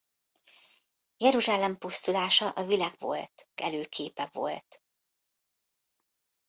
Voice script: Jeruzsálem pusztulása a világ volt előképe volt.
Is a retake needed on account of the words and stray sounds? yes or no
no